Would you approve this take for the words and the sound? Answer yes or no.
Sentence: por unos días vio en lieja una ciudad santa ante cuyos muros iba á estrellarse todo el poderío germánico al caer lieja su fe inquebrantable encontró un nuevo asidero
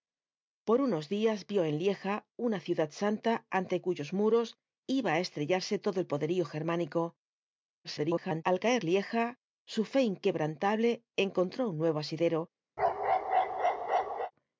no